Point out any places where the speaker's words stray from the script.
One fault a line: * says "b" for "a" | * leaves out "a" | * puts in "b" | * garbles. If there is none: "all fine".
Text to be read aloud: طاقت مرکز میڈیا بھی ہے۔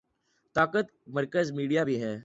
all fine